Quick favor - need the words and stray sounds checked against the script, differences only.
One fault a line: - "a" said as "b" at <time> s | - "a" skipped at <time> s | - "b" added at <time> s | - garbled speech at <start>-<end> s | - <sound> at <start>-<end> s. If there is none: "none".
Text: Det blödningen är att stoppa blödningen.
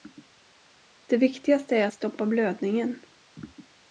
- "blödningen" said as "viktigaste" at 1.2 s